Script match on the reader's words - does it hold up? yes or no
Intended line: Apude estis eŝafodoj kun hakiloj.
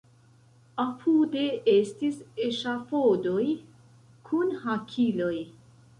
yes